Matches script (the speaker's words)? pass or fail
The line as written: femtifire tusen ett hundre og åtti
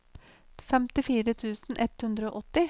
pass